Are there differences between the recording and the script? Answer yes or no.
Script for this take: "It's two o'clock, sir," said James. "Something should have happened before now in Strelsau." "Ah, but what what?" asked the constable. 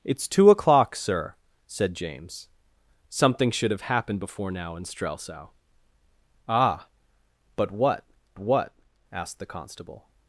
no